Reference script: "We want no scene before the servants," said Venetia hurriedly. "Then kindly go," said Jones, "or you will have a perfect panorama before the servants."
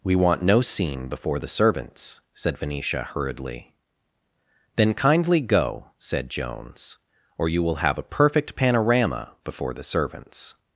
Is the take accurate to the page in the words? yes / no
yes